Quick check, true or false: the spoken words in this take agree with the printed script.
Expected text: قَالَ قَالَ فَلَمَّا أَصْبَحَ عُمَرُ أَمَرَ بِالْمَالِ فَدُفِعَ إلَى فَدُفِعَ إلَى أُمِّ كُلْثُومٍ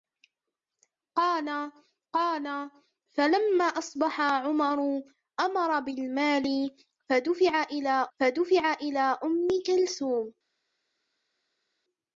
true